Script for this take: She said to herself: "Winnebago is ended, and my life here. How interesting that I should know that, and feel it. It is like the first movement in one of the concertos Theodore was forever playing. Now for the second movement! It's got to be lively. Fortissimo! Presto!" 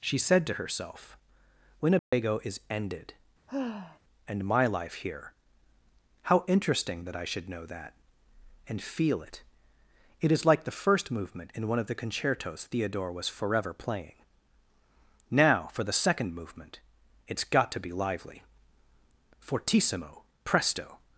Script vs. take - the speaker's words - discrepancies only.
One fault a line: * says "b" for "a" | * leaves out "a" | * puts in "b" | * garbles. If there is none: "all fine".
all fine